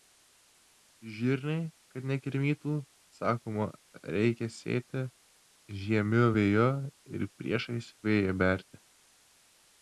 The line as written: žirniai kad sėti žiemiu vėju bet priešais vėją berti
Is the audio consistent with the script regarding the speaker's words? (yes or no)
no